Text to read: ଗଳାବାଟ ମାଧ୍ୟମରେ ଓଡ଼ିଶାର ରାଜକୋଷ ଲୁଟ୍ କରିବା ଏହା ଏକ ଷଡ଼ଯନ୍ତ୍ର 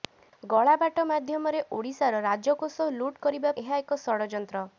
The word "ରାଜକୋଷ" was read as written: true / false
true